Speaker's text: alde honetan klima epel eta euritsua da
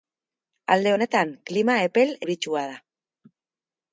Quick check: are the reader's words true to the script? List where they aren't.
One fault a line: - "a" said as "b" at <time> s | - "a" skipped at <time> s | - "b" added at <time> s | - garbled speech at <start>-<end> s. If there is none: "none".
- "eta" skipped at 2.2 s